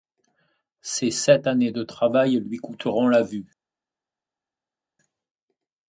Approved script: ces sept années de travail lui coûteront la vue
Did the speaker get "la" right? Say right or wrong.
right